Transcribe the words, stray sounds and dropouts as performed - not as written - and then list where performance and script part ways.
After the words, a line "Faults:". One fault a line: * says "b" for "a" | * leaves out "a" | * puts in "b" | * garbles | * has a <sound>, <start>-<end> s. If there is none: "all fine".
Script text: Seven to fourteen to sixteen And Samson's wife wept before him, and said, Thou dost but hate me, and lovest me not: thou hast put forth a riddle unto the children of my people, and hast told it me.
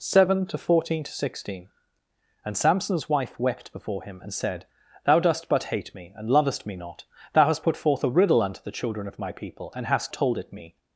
Seven to fourteen to sixteen And Samson's wife wept before him, and said, Thou dost but hate me, and lovest me not: thou hast put forth a riddle unto the children of my people, and hast told it me.
Faults:
all fine